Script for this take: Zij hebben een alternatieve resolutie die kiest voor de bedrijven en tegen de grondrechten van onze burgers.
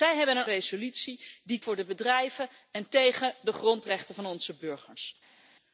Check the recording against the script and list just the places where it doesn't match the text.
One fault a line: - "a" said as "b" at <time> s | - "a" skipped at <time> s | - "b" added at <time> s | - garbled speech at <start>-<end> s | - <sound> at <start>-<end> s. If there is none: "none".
- "alternatieve" skipped at 0.5 s
- "kiest" skipped at 1.6 s